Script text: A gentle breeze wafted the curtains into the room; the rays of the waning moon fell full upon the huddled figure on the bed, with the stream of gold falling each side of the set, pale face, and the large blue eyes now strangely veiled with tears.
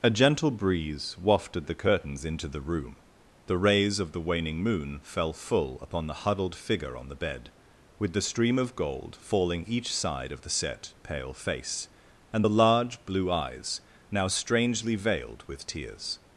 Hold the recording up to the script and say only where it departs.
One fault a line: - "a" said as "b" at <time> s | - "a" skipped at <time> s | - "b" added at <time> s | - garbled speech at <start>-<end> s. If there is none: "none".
none